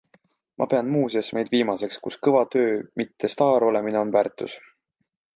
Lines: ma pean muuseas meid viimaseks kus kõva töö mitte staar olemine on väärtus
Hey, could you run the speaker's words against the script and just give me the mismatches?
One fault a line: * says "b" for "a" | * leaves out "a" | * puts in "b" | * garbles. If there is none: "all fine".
all fine